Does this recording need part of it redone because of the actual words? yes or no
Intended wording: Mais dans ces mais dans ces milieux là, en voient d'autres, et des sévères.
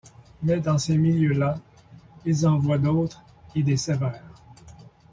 yes